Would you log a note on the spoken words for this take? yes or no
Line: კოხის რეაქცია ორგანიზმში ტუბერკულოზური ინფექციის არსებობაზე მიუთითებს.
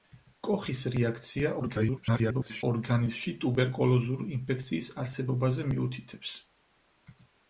yes